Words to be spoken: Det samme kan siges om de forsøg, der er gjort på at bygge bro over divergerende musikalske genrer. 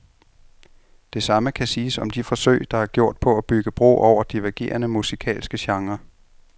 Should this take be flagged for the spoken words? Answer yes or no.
no